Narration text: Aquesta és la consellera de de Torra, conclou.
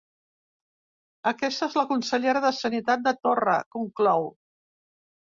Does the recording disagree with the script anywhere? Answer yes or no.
yes